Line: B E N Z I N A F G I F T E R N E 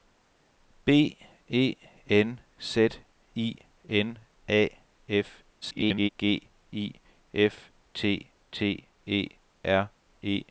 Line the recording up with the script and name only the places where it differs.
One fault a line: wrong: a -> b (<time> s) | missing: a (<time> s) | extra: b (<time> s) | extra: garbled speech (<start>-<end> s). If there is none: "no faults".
extra: garbled speech (5.6-6.1 s)
extra: T (8.5 s)
missing: N (9.9 s)